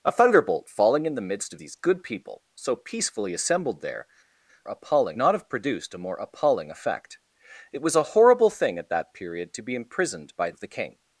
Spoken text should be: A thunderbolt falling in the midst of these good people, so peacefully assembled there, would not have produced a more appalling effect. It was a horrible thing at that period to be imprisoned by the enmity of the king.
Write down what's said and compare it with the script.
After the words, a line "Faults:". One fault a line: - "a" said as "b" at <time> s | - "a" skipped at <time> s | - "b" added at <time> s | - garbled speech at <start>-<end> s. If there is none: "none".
A thunderbolt falling in the midst of these good people, so peacefully assembled there, appalling not have produced a more appalling effect. It was a horrible thing at that period to be imprisoned by of the king.
Faults:
- "would" said as "appalling" at 4.6 s
- "the enmity" skipped at 10.5 s